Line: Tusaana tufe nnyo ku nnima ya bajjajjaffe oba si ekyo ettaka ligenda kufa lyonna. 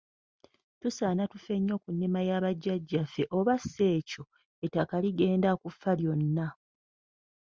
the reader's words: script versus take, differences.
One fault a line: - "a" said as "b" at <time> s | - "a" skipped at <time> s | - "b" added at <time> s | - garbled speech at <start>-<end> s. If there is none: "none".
none